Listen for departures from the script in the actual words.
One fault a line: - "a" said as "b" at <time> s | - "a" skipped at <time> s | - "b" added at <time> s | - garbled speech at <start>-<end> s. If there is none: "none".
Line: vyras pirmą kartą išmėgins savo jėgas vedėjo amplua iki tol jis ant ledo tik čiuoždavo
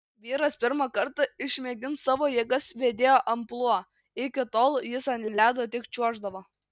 - "ant" added at 5.3 s